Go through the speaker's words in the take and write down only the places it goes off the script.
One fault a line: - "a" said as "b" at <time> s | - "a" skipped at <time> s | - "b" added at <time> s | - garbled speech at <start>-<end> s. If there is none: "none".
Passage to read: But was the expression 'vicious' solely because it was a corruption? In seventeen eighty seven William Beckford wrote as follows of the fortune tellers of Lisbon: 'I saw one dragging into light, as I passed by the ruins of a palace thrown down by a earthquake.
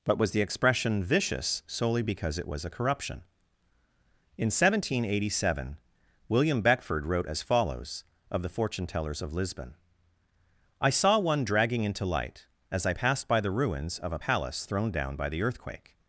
- "a" said as "the" at 15.3 s